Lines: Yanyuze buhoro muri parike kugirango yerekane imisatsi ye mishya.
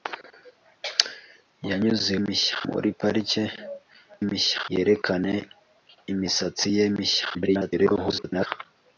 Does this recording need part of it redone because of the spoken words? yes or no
yes